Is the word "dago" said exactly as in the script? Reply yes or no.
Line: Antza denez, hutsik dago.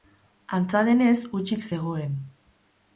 no